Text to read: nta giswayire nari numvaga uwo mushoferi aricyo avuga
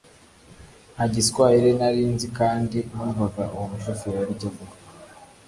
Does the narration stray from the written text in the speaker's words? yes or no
yes